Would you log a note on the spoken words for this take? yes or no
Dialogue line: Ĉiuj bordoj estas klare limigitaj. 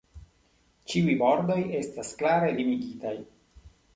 no